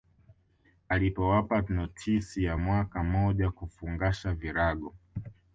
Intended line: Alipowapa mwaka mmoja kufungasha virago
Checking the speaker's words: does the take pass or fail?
fail